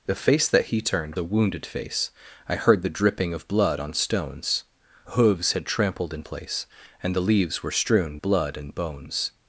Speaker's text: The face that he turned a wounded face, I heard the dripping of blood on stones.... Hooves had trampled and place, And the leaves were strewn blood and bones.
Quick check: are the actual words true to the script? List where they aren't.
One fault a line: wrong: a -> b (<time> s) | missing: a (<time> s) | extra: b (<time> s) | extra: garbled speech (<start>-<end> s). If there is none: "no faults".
no faults